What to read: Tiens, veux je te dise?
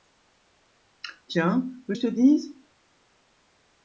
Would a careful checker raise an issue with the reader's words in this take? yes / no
no